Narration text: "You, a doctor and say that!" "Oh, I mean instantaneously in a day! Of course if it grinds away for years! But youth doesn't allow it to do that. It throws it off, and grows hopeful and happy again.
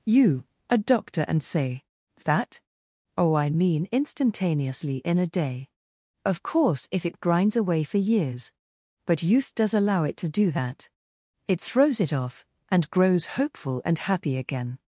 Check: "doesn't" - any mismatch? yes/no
yes